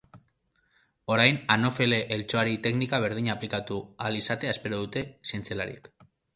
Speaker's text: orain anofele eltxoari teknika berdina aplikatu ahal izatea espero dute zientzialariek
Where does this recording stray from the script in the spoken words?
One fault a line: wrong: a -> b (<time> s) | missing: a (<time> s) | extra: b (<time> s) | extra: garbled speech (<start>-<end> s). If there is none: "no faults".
no faults